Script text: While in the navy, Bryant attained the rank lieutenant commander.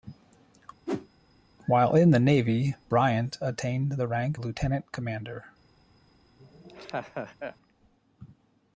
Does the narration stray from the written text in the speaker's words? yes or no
no